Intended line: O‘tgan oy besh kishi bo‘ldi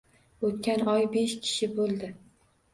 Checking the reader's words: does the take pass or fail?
pass